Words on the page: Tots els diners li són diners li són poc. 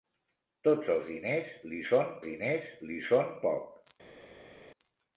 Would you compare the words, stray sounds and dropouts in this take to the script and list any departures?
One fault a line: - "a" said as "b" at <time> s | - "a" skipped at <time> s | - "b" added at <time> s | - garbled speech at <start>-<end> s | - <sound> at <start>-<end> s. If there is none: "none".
none